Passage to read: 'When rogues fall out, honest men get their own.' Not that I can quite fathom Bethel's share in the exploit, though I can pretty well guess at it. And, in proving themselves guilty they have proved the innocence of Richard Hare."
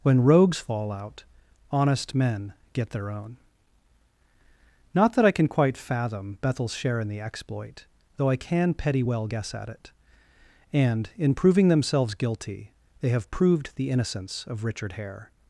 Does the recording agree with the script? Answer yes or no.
no